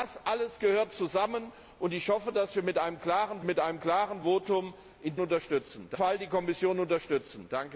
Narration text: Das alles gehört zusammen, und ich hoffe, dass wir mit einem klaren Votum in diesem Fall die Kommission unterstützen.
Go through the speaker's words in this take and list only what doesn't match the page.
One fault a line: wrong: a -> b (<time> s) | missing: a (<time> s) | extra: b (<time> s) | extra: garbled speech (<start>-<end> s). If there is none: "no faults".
extra: mit einem klaren (3.4 s)
wrong: diesem -> unterstützen (5.2 s)